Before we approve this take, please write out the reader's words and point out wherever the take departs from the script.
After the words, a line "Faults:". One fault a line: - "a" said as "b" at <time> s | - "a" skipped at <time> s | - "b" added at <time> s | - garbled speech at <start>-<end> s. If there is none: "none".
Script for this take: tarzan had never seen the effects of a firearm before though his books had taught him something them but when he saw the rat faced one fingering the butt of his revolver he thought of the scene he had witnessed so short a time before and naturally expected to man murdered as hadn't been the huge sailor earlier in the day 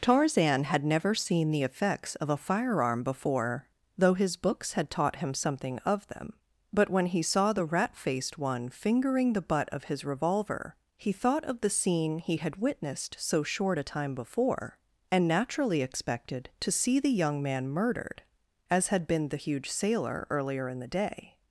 tarzan had never seen the effects of a firearm before though his books had taught him something of them but when he saw the rat faced one fingering the butt of his revolver he thought of the scene he had witnessed so short a time before and naturally expected to see the young man murdered as had been the huge sailor earlier in the day
Faults:
- "of" added at 5.8 s
- "see the young" added at 16.7 s
- "hadn't" said as "had" at 18.9 s